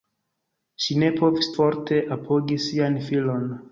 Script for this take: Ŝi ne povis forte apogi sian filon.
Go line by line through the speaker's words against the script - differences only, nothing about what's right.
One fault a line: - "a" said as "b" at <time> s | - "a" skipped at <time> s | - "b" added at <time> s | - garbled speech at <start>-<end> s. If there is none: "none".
none